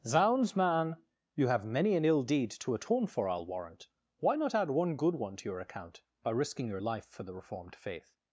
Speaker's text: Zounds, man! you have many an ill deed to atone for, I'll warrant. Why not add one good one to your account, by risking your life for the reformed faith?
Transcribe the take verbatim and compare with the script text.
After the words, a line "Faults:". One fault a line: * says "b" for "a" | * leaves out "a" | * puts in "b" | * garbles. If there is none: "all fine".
Zounds, man! you have many an ill deed to atone for, I'll warrant. Why not add one good one to your account, by risking your life for the reformed faith?
Faults:
all fine